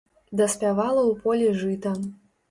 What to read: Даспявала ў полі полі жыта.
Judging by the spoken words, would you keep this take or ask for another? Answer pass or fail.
fail